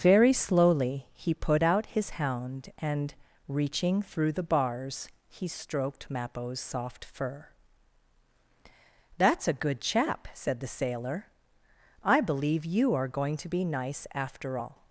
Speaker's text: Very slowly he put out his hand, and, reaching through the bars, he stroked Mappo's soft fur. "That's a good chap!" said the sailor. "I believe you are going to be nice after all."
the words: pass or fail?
fail